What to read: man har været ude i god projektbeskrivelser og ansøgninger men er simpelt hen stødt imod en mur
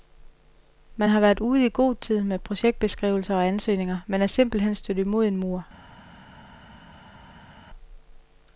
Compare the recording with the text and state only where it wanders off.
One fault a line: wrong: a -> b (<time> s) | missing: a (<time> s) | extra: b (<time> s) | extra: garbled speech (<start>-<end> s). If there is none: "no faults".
extra: tid med (2.0 s)